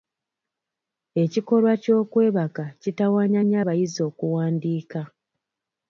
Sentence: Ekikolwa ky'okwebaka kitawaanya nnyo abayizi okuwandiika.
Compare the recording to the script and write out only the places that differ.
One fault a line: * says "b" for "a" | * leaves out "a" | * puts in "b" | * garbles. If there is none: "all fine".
all fine